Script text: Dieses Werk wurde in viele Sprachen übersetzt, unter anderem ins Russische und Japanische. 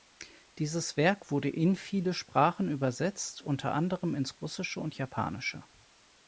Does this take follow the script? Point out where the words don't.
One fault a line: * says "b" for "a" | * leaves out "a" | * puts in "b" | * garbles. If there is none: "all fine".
all fine